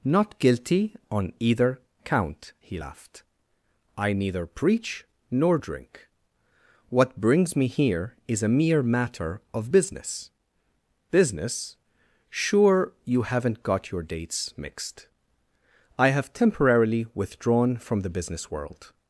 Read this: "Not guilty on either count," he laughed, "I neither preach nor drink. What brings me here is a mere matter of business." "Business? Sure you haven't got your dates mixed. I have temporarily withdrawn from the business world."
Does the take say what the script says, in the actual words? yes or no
yes